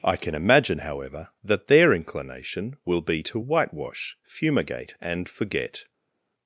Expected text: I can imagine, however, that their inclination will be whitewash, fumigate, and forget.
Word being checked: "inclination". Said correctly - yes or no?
yes